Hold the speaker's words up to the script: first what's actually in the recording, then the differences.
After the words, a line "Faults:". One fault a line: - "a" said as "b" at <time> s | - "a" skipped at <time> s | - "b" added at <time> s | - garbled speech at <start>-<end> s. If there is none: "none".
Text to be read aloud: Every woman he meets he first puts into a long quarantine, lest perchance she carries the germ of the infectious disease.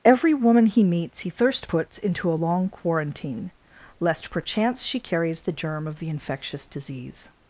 Every woman he meets he thirst puts into a long quarantine, lest perchance she carries the germ of the infectious disease.
Faults:
- "first" said as "thirst" at 1.3 s